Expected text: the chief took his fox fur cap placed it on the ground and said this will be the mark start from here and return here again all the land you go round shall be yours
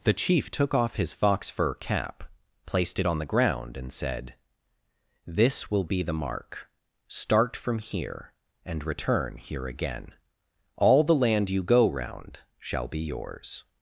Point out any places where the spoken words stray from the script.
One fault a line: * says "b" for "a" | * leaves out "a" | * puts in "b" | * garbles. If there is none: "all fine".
* puts in "off"